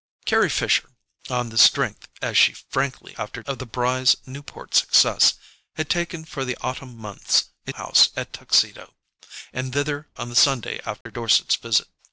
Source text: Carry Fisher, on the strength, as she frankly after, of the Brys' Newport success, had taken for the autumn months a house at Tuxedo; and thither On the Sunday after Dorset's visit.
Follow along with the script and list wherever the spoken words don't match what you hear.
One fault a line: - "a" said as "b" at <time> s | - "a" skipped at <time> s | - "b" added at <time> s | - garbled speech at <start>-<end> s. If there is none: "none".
none